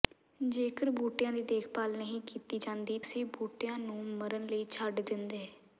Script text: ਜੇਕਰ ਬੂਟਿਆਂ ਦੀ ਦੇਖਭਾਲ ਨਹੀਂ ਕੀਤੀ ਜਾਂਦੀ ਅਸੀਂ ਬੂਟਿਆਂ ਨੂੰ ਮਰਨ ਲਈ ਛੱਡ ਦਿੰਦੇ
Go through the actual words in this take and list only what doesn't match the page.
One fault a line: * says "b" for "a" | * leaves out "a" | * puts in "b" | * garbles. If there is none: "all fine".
all fine